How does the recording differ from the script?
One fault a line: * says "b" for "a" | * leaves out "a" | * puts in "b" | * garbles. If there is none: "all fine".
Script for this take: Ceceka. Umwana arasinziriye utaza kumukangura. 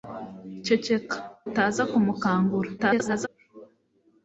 * leaves out "Umwana arasinziriye"
* garbles